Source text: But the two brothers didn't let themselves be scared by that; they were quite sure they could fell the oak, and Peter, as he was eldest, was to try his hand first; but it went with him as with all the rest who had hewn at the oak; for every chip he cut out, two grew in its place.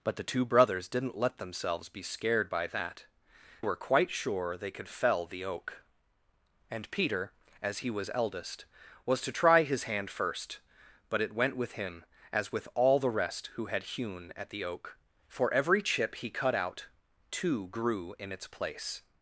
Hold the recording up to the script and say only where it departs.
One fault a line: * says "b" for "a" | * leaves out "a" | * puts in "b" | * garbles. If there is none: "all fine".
* leaves out "they"